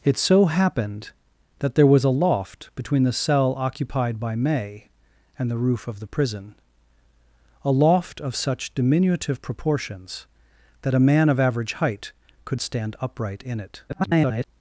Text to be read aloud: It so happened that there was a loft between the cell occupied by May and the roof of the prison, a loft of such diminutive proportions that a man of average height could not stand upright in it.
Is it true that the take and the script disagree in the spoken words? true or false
true